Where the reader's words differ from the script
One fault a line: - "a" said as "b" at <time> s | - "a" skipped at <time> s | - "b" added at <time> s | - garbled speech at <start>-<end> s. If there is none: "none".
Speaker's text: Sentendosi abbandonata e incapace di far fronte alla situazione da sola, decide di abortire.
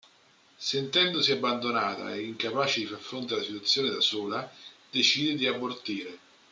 none